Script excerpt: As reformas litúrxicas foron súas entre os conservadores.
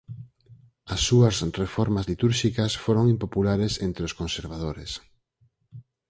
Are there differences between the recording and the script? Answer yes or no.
yes